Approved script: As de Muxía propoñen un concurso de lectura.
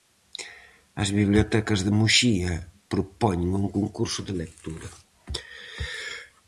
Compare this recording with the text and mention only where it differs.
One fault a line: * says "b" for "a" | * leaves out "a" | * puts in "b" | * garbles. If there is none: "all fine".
* puts in "bibliotecas"